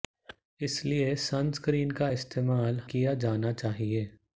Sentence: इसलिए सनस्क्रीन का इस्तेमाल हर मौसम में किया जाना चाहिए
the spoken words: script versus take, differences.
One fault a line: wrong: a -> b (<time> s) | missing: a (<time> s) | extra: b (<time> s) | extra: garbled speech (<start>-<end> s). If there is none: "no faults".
missing: हर मौसम में (2.8 s)